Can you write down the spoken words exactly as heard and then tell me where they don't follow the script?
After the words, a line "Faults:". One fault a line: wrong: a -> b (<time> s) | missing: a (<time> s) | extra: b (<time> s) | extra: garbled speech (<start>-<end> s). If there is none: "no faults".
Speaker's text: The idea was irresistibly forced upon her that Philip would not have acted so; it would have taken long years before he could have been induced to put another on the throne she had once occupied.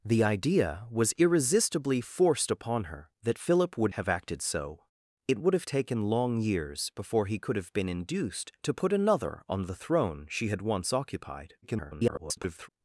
The idea was irresistibly forced upon her that Philip would have acted so; it would have taken long years before he could have been induced to put another on the throne she had once occupied. [garbled]
Faults:
missing: not (3.9 s)
extra: garbled speech (11.6-12.7 s)